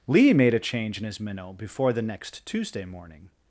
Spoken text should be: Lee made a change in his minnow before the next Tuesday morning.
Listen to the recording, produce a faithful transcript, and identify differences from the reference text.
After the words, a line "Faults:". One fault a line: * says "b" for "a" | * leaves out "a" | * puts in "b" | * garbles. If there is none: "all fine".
Lee made a change in his minnow before the next Tuesday morning.
Faults:
all fine